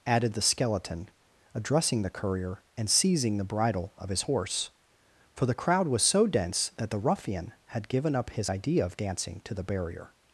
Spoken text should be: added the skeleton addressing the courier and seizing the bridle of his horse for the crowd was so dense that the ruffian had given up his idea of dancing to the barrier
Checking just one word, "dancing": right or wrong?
right